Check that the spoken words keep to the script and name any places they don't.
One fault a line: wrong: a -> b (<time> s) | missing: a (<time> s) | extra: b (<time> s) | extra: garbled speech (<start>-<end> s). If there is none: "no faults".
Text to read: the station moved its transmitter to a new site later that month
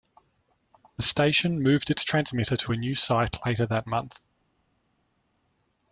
no faults